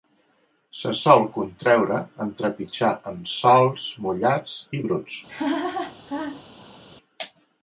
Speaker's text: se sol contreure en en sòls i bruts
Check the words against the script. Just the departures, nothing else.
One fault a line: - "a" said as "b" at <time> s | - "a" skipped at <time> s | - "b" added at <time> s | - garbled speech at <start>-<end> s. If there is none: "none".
- "trepitjar" added at 2.4 s
- "mullats" added at 4.1 s